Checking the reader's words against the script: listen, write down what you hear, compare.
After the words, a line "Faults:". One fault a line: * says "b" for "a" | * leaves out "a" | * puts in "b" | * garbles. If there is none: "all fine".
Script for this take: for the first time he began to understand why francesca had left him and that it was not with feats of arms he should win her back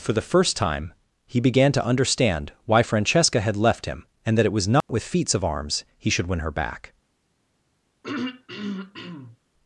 for the first time he began to understand why francesca had left him and that it was not with feats of arms he should win her back
Faults:
all fine